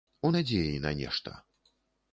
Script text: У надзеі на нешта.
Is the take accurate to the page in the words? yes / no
yes